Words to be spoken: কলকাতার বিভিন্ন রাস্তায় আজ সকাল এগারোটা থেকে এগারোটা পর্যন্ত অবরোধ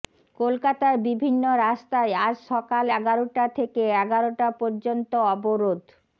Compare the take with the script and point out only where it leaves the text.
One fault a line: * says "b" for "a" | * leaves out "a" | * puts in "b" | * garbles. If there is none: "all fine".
all fine